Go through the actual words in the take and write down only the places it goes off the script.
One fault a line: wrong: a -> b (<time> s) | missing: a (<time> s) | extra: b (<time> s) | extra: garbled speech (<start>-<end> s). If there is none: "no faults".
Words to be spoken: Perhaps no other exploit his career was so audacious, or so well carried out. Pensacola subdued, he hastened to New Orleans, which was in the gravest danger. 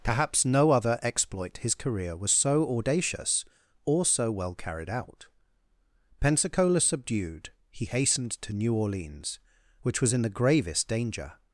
no faults